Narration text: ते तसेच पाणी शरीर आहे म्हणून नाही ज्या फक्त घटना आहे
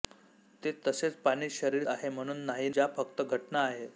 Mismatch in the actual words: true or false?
false